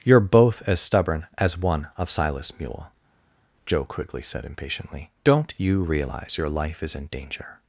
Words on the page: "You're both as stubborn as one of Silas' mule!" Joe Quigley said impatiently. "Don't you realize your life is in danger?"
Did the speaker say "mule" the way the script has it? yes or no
yes